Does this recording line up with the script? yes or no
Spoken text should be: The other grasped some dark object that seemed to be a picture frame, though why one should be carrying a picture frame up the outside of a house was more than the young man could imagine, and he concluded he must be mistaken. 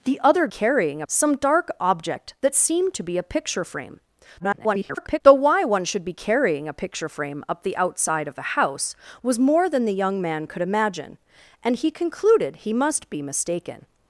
no